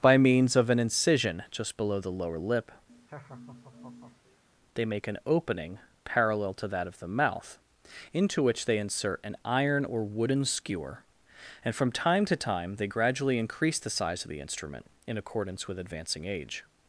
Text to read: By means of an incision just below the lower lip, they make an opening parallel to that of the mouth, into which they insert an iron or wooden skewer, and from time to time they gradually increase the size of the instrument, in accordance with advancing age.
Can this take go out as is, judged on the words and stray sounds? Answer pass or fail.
fail